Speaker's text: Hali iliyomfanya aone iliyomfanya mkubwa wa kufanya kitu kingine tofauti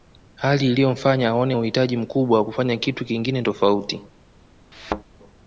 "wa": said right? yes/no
yes